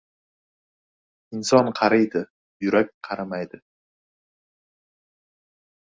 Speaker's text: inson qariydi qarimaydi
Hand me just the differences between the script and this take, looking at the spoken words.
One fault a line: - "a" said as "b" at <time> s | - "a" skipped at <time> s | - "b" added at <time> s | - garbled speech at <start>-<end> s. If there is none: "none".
- "yurak" added at 2.7 s